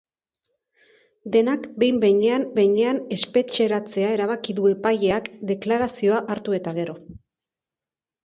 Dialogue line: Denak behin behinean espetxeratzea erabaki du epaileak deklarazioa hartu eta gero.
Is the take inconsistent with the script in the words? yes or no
yes